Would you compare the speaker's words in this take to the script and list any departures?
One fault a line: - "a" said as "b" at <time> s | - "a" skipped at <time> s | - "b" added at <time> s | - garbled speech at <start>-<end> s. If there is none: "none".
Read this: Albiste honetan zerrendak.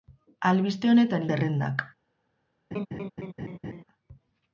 none